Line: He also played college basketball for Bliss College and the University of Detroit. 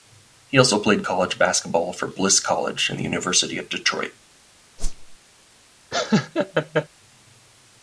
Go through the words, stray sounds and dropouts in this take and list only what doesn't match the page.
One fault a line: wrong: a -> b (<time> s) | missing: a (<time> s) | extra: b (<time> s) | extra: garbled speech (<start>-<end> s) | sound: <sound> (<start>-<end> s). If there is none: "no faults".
sound: whoosh (4.8-5.2 s)
sound: laugh (5.9-6.9 s)